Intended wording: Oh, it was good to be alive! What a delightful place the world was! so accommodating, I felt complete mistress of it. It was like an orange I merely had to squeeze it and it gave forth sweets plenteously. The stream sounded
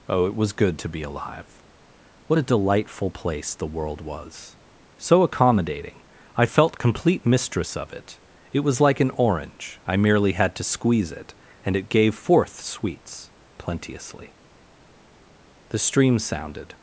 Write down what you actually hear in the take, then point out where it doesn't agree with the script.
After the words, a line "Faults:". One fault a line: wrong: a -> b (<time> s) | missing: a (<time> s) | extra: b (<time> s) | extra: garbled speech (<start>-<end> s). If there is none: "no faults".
Oh, it was good to be alive! What a delightful place the world was! so accommodating, I felt complete mistress of it. It was like an orange I merely had to squeeze it and it gave forth sweets plenteously. The stream sounded
Faults:
no faults